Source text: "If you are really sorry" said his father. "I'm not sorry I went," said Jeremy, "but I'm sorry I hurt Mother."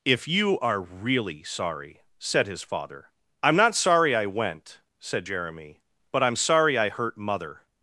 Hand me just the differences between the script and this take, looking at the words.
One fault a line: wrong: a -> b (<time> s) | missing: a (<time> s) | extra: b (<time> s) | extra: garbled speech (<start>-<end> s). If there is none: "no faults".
no faults